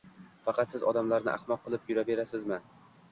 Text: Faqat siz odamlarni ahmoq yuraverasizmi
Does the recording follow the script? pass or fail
fail